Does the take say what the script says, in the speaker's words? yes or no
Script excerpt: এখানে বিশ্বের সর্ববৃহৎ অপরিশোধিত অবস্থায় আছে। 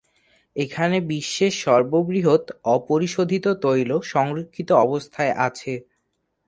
no